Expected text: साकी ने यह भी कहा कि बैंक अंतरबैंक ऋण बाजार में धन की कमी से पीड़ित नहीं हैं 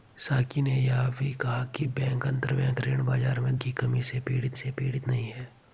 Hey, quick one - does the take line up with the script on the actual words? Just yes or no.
no